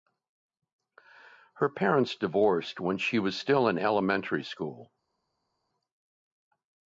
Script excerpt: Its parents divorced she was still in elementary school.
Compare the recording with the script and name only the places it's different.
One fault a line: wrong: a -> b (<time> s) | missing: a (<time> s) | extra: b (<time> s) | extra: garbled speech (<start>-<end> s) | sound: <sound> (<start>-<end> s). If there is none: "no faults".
wrong: Its -> Her (1.5 s)
extra: when (2.8 s)